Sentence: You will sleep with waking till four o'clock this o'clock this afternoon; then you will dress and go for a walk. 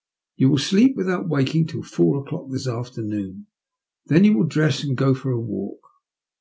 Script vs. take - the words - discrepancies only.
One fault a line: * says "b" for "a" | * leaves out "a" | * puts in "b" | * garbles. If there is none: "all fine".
* says "without" for "with"
* leaves out "o'clock this"